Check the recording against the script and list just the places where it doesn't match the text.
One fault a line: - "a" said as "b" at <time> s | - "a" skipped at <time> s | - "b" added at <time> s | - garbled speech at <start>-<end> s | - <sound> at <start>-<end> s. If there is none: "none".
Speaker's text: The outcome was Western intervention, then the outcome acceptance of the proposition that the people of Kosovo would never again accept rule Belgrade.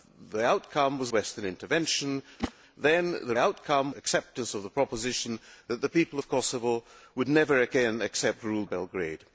- whoosh at 2.4-2.5 s